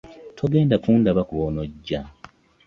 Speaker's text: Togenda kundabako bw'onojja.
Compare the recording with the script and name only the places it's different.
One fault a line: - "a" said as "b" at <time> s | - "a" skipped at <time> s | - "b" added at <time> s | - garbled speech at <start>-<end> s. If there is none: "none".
none